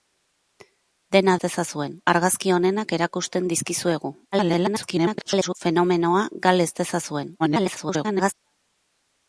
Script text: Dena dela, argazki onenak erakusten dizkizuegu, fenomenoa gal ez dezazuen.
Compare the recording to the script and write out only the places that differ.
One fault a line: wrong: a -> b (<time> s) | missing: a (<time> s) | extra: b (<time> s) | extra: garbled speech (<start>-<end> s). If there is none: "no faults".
wrong: dela -> dezazuen (1.5 s)
extra: garbled speech (4.3-5.5 s)
extra: garbled speech (7.4-8.3 s)